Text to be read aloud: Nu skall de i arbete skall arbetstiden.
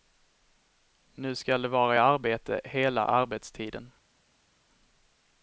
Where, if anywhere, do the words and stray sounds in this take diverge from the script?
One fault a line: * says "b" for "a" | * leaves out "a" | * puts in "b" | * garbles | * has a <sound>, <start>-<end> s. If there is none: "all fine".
* puts in "vara"
* says "hela" for "skall"